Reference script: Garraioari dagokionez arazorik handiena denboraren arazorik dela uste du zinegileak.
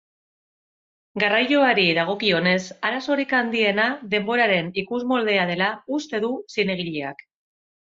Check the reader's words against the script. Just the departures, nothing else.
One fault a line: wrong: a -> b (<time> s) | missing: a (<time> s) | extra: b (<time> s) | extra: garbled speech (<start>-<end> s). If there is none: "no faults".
wrong: arazorik -> ikusmoldea (4.9 s)